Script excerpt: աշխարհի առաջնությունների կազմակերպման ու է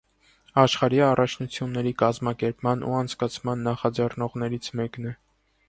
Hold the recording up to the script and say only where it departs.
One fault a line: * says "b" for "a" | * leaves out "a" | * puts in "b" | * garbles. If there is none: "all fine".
* puts in "անցկացման նախաձեռնողներից մեկն"